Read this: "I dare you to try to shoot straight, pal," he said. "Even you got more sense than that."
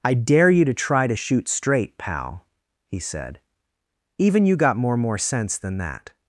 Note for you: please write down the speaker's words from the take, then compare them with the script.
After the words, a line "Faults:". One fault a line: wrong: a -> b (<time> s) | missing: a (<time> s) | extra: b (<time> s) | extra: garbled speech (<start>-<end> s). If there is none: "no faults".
"I dare you to try to shoot straight, pal," he said. "Even you got more more sense than that."
Faults:
extra: more (5.0 s)